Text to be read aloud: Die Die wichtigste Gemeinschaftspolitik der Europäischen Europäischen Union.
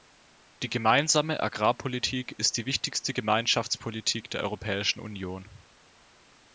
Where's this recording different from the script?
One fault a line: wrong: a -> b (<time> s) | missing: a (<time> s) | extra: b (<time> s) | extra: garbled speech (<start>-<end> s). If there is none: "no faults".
extra: Gemeinsame Agrarpolitik ist (0.7 s)
missing: Europäischen (5.0 s)